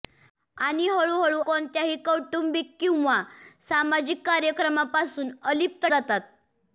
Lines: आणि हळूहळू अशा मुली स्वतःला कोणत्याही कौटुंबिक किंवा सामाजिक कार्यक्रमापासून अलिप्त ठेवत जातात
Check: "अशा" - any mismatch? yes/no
yes